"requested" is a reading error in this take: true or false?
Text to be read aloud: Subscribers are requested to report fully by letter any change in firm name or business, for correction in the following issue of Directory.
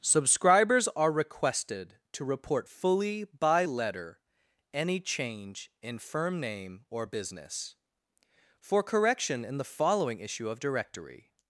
false